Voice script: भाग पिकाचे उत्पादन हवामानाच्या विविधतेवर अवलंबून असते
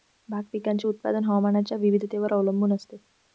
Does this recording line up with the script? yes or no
yes